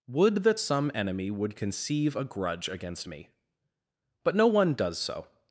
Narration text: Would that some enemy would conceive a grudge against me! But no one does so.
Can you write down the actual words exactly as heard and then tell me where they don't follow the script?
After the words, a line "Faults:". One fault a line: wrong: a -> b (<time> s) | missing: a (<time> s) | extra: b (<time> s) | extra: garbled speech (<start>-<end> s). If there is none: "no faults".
Would that some enemy would conceive a grudge against me! But no one does so.
Faults:
no faults